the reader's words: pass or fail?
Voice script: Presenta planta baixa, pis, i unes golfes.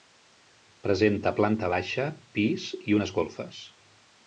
pass